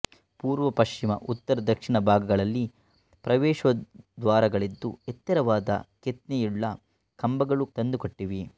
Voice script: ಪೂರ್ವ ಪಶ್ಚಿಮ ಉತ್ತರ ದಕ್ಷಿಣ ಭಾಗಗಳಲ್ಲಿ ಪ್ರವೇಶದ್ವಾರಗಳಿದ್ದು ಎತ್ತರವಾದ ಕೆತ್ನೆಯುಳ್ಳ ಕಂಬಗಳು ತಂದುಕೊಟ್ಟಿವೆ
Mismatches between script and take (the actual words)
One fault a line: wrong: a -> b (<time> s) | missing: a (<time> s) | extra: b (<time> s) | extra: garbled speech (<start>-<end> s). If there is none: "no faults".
no faults